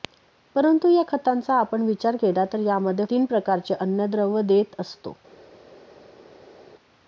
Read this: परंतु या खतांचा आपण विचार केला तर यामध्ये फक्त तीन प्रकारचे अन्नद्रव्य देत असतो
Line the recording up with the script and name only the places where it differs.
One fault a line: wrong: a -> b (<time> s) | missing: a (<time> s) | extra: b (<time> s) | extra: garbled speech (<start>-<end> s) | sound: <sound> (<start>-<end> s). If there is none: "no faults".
missing: फक्त (3.0 s)